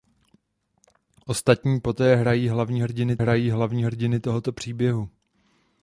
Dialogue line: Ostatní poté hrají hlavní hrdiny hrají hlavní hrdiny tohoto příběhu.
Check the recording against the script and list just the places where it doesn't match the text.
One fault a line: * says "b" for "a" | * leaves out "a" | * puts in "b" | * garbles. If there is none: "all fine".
all fine